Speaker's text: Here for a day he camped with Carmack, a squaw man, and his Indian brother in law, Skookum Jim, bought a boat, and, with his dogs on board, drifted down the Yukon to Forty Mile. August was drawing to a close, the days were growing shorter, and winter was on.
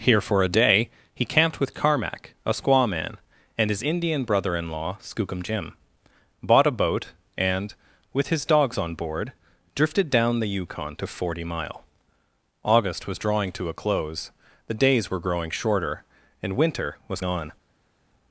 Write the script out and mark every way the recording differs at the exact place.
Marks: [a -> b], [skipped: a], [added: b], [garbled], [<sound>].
Here for a day he camped with Carmack, a squaw man, and his Indian brother in law, Skookum Jim, bought a boat, and, with his dogs on board, drifted down the Yukon to Forty Mile. August was drawing to a close, the days were growing shorter, and winter was on.